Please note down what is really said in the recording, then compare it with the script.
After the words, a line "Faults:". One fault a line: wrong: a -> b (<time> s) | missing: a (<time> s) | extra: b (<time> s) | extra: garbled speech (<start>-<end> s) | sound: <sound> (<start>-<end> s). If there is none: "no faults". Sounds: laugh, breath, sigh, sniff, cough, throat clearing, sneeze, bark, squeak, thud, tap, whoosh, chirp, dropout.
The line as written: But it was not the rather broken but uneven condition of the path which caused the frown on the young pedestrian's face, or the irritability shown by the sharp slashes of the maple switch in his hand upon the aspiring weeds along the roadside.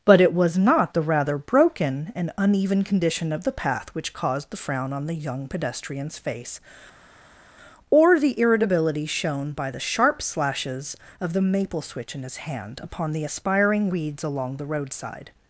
But it was not the rather broken and uneven condition of the path which caused the frown on the young pedestrian's face, or the irritability shown by the sharp slashes of the maple switch in his hand upon the aspiring weeds along the roadside.
Faults:
wrong: but -> and (2.1 s)